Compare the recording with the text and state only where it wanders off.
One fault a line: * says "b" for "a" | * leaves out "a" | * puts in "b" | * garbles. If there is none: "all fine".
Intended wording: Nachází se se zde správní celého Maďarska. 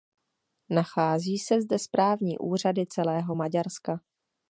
* leaves out "se"
* puts in "úřady"